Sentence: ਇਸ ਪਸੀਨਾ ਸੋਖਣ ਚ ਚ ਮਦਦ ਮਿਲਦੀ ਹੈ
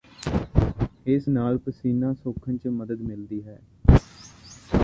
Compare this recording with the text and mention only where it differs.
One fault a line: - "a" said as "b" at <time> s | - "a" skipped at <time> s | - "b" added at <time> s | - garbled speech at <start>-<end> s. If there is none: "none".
- "ਨਾਲ" added at 1.3 s
- "ਚ" skipped at 2.7 s